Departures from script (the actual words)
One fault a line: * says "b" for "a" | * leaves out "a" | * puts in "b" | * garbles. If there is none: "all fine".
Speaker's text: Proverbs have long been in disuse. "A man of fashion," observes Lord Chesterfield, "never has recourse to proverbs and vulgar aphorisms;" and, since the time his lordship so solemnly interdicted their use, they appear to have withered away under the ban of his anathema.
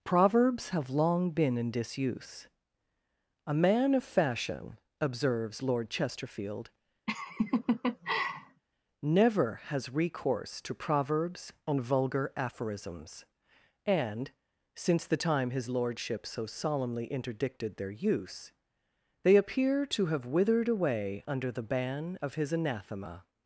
all fine